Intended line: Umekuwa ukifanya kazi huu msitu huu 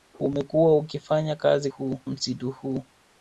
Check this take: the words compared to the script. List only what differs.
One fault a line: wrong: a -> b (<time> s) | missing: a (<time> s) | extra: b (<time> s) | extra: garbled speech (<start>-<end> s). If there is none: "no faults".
no faults